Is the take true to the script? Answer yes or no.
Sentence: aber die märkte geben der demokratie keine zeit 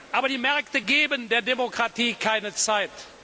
yes